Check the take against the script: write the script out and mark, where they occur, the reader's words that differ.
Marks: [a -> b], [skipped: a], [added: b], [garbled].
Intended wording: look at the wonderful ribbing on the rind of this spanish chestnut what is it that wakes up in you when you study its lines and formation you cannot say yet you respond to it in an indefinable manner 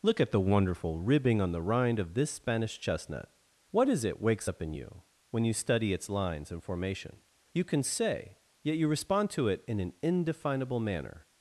look at the wonderful ribbing on the rind of this spanish chestnut what is it [skipped: that] wakes up in you when you study its lines and formation you [cannot -> can] say yet you respond to it in an indefinable manner